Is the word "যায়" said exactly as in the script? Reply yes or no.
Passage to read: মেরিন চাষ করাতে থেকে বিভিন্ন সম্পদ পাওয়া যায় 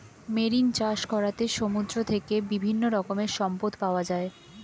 yes